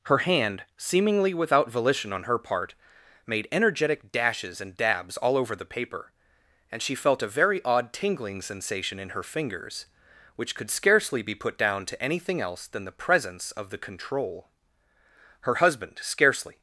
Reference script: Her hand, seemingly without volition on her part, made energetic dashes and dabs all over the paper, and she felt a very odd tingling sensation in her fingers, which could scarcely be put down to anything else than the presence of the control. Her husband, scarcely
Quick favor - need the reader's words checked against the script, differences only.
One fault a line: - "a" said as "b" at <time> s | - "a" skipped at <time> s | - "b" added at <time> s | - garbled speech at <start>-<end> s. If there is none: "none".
none